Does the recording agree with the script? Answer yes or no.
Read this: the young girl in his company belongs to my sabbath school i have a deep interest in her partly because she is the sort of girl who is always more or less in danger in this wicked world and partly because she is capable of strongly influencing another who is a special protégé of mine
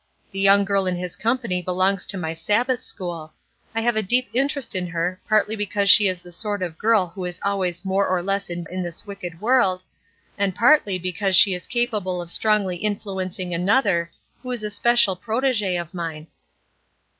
no